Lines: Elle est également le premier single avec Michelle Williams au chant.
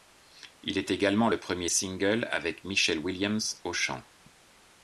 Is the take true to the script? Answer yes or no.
no